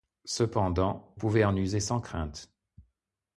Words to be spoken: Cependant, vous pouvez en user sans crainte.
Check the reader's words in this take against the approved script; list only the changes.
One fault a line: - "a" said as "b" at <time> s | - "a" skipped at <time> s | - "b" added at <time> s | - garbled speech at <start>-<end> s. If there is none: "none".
- "vous" skipped at 1.1 s